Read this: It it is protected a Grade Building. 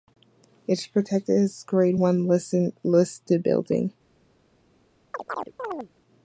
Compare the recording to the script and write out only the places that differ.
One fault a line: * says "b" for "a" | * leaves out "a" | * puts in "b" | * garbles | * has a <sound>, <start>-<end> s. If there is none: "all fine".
* leaves out "it"
* puts in "as"
* puts in "One listed"
* has a chirp, 5.1-5.9 s